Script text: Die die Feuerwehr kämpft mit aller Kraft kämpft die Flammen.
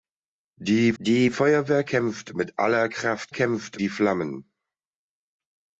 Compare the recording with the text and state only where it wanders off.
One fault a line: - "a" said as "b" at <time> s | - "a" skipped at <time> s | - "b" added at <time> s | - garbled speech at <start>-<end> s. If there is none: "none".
none